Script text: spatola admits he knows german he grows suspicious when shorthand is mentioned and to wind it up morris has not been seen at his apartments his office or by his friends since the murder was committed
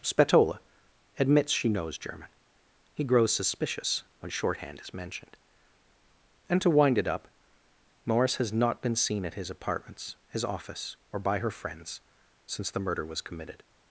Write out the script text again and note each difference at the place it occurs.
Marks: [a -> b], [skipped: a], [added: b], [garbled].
spatola admits [he -> she] knows german he grows suspicious when shorthand is mentioned and to wind it up morris has not been seen at his apartments his office or by [his -> her] friends since the murder was committed